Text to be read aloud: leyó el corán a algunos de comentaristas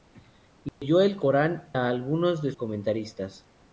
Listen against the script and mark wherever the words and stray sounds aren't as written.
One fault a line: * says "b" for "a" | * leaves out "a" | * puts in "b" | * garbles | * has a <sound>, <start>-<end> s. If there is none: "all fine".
* has a dropout, 0.7-0.8 s